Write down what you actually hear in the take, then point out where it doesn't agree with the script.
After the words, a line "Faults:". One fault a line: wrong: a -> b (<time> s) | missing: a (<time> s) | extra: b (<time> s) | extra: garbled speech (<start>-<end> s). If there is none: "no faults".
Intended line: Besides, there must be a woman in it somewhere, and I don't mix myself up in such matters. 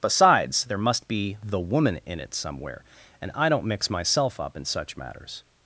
Besides, there must be the woman in it somewhere, and I don't mix myself up in such matters.
Faults:
wrong: a -> the (1.4 s)